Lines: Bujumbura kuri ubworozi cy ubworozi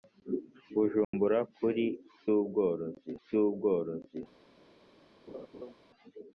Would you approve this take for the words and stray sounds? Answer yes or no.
no